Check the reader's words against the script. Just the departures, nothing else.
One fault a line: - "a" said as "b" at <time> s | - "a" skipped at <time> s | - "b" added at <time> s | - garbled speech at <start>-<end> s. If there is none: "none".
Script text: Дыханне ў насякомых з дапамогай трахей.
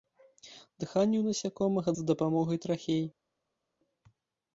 none